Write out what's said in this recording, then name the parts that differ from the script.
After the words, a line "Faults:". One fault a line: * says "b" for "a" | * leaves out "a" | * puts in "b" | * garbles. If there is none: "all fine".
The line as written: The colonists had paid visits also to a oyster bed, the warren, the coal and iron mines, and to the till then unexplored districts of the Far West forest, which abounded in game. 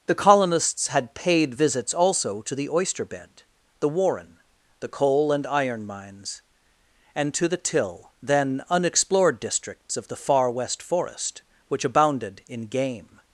The colonists had paid visits also to the oyster bed, the warren, the coal and iron mines, and to the till then unexplored districts of the Far West forest, which abounded in game.
Faults:
* says "the" for "a"